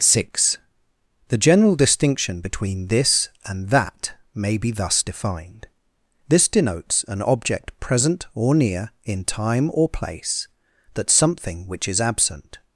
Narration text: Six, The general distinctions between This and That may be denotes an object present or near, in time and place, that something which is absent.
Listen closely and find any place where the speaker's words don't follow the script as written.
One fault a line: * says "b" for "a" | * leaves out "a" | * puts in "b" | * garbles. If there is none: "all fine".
* says "distinction" for "distinctions"
* puts in "thus defined this"
* says "or" for "and"